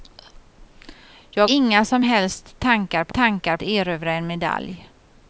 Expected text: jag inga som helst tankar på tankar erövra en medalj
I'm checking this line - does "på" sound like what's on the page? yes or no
yes